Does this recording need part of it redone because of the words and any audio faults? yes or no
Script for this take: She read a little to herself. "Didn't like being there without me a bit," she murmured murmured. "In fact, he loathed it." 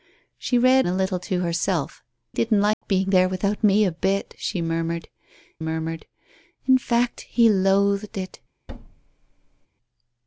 yes